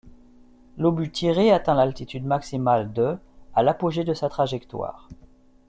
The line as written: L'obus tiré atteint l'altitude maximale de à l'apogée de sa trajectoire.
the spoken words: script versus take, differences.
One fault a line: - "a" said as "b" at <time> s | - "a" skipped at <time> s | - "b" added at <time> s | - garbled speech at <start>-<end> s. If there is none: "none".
none